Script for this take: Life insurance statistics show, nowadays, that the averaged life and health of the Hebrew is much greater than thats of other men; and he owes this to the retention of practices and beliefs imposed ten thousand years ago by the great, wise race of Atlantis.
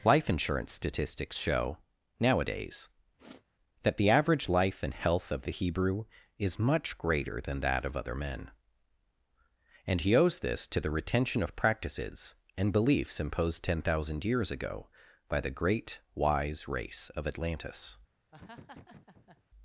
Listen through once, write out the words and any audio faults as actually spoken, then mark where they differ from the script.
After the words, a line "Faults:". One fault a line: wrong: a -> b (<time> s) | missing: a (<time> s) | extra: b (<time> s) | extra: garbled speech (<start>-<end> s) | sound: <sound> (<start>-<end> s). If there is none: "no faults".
Life insurance statistics show, nowadays, that the average life and health of the Hebrew is much greater than that of other men; and he owes this to the retention of practices and beliefs imposed ten thousand years ago by the great, wise race of Atlantis.
Faults:
sound: sniff (3.2-3.4 s)
wrong: averaged -> average (4.1 s)
wrong: thats -> that (7.6 s)
sound: laugh (18.3-19.4 s)